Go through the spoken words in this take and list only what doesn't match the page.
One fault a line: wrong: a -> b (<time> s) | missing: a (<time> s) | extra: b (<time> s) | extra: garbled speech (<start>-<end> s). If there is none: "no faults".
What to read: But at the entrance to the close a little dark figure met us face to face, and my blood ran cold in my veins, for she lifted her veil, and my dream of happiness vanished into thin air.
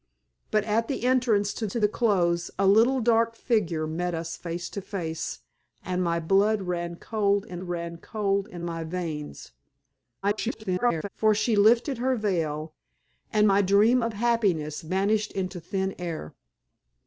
extra: to (1.7 s)
extra: ran cold in (7.6 s)
extra: garbled speech (10.2-11.1 s)